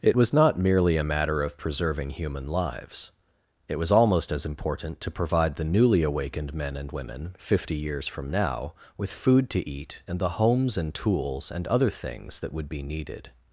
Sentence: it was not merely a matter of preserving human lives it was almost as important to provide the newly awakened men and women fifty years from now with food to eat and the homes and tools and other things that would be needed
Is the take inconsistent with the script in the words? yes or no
no